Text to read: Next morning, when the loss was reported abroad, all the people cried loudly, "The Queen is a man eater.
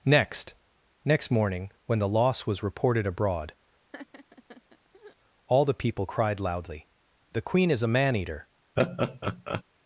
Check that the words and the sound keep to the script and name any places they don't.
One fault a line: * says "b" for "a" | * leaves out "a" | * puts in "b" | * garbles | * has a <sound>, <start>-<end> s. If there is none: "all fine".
* puts in "next"
* has a laugh, 3.9-5.2 s
* has a laugh, 8.8-9.6 s